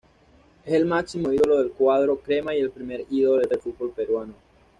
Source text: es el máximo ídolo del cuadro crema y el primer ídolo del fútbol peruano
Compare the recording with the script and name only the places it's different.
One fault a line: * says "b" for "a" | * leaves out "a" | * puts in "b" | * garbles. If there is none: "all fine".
* puts in "del"